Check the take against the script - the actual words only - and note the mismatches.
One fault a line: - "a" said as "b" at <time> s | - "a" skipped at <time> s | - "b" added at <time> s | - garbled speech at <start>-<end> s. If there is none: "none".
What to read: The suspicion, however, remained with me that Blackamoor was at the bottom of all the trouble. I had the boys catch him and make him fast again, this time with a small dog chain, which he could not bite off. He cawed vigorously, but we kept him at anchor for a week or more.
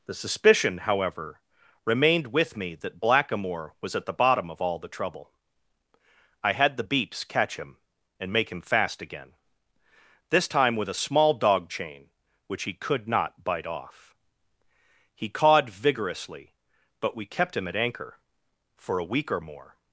- "boys" said as "beeps" at 6.8 s